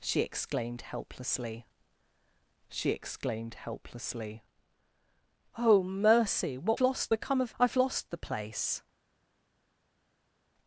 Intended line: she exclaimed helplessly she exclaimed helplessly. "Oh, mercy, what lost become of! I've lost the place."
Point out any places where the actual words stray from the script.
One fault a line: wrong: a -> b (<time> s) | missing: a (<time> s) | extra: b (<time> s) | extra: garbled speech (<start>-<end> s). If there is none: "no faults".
no faults